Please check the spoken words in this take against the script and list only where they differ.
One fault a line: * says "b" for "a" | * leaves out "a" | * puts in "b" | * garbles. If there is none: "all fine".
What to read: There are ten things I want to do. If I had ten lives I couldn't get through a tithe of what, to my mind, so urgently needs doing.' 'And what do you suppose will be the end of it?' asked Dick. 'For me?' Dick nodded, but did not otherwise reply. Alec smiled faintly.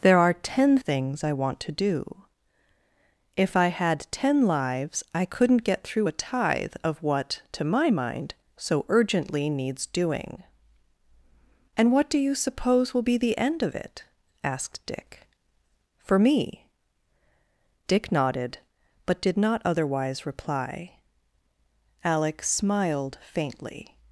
all fine